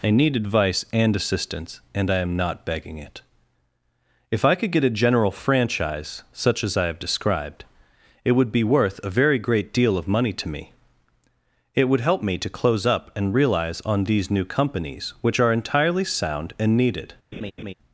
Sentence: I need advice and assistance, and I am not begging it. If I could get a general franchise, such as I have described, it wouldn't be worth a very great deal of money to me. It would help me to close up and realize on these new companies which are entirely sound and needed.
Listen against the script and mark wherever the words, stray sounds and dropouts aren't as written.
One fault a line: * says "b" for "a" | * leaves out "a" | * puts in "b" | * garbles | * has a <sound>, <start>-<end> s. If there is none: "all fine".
* says "would" for "wouldn't"
* has a laugh, 17.3-17.7 s